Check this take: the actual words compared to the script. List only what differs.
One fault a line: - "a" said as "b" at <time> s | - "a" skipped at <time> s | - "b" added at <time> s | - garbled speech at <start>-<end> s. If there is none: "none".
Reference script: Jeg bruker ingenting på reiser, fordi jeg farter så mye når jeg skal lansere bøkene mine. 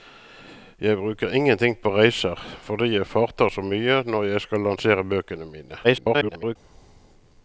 - garbled speech at 5.8-6.6 s